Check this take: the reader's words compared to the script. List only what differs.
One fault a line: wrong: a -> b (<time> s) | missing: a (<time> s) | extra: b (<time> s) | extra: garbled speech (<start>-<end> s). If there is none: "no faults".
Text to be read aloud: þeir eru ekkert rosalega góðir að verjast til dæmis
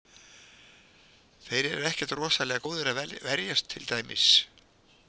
no faults